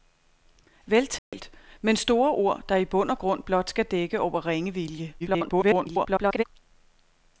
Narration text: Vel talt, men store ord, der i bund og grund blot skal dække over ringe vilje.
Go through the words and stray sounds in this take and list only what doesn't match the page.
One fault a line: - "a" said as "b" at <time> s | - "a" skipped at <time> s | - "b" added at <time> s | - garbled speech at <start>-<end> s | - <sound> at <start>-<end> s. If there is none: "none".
- dropout at 1.2-1.3 s
- garbled speech at 5.2-6.4 s